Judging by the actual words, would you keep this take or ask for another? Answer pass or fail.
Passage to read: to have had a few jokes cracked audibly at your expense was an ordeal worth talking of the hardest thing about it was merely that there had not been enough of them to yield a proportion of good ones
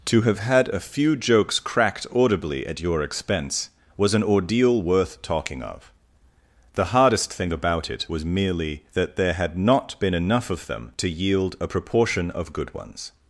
pass